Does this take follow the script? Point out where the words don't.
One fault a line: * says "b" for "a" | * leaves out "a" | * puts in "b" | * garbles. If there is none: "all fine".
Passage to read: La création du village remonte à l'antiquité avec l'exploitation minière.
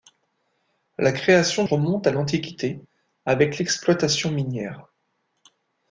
* leaves out "du village"